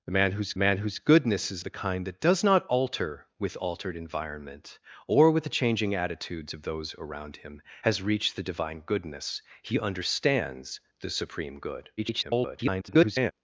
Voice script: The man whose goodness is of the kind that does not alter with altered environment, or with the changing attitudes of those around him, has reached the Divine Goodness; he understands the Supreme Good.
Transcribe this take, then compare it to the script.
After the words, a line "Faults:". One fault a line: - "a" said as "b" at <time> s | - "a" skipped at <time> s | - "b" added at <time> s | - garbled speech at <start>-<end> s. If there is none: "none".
The man whose man whose goodness is the kind that does not alter with altered environment, or with the changing attitudes of those around him, has reached the Divine Goodness; he understands the Supreme Good. [garbled]
Faults:
- "man whose" added at 0.6 s
- "of" skipped at 1.6 s
- garbled speech at 12.0-13.3 s